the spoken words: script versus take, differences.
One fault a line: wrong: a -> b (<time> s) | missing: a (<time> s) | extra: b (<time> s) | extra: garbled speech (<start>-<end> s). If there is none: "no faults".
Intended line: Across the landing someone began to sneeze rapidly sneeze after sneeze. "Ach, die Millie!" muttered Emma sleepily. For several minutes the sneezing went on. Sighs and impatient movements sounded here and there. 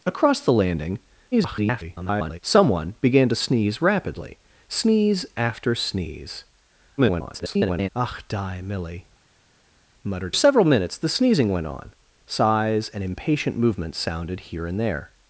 extra: garbled speech (1.3-2.4 s)
extra: garbled speech (7.0-7.9 s)
missing: Emma sleepily For (10.4 s)